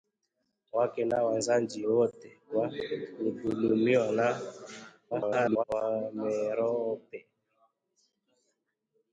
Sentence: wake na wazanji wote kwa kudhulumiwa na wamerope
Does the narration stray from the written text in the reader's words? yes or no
yes